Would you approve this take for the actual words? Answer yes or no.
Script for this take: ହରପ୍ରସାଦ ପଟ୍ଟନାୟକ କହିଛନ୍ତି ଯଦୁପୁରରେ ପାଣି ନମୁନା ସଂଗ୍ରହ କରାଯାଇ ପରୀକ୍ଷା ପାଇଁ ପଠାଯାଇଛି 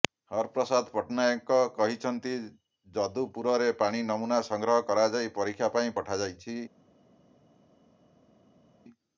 yes